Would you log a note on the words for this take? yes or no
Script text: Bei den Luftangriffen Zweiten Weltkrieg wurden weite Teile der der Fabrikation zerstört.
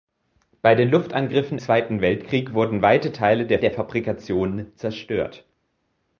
no